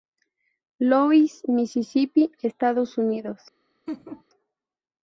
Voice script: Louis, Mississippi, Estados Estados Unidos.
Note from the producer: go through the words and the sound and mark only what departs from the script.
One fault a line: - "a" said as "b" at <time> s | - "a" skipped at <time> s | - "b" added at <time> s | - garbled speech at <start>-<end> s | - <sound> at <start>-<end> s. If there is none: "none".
- "Estados" skipped at 3.0 s
- laugh at 3.9-4.2 s